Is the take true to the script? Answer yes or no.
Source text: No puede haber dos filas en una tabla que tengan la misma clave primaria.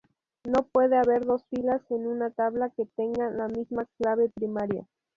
yes